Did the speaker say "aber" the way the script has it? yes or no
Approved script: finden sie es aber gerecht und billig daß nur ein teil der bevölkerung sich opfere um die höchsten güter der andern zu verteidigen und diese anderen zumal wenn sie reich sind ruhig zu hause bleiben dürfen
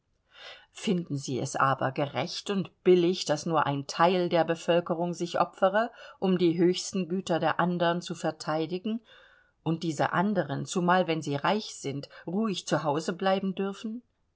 yes